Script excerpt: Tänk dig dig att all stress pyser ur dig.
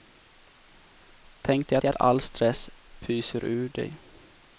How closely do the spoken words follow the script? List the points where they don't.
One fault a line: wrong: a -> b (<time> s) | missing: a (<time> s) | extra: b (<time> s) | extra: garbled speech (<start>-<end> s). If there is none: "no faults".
no faults